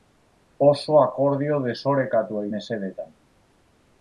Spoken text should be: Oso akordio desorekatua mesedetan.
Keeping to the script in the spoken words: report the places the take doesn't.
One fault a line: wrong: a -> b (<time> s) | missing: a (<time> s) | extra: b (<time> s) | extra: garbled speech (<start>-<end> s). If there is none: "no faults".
no faults